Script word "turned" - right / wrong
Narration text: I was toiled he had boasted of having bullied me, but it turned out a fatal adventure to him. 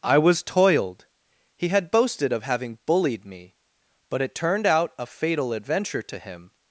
right